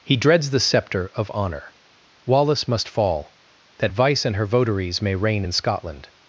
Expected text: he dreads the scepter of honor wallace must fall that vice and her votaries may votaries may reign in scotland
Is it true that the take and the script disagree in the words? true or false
true